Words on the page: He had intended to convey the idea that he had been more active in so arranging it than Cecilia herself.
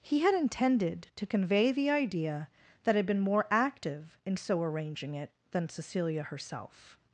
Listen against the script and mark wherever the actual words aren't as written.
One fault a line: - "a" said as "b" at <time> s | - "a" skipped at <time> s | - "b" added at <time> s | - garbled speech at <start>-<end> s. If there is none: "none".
- "he" skipped at 3.0 s